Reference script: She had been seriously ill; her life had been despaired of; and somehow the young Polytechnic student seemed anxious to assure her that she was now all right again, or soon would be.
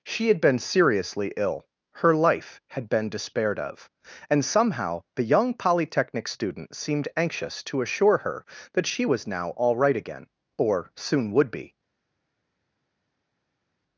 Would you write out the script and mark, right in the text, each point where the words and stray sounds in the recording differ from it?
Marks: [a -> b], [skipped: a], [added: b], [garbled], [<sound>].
She had been seriously ill; her life had been despaired of; and somehow the young Polytechnic student seemed anxious to assure her that she was now all right again, or soon would be.